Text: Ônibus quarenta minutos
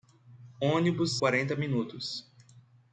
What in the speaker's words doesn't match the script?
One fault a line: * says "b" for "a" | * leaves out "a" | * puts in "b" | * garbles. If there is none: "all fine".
all fine